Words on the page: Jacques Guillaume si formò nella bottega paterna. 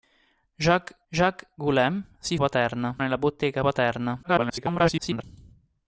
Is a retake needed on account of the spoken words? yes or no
yes